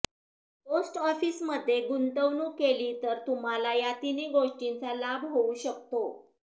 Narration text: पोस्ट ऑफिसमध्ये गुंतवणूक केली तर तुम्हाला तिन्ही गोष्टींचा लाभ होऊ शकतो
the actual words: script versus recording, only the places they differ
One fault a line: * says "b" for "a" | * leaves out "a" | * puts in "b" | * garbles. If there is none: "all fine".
* puts in "या"